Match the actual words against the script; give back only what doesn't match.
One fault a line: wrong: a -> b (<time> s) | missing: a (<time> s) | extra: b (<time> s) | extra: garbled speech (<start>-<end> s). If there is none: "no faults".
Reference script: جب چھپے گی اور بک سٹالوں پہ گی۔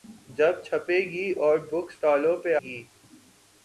no faults